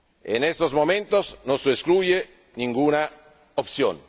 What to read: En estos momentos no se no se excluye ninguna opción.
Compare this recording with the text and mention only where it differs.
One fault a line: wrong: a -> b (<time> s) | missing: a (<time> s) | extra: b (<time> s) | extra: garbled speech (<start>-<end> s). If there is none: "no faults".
missing: no se (1.7 s)